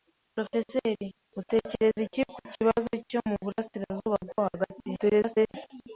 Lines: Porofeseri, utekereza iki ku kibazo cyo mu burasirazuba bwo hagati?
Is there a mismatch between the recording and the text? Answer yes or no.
yes